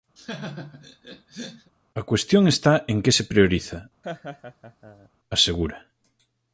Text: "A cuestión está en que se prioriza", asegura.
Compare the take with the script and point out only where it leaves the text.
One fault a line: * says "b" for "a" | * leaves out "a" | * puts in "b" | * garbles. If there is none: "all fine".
all fine